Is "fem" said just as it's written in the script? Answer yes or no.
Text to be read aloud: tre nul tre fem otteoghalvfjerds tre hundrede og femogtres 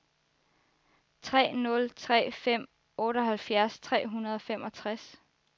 yes